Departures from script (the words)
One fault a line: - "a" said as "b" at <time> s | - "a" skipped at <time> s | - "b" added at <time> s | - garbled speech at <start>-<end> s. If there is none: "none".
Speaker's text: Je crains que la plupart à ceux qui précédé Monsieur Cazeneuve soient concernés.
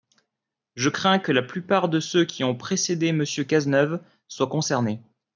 - "à" said as "de" at 1.9 s
- "ont" added at 2.4 s